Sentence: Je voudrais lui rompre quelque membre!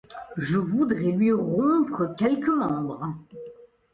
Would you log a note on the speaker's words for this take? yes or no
no